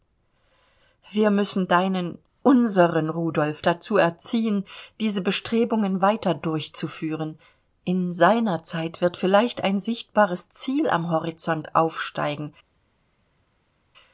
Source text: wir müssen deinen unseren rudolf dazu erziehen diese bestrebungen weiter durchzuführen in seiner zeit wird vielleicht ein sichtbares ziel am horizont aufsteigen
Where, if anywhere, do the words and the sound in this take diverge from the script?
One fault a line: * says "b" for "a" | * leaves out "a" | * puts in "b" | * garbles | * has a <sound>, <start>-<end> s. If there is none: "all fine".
all fine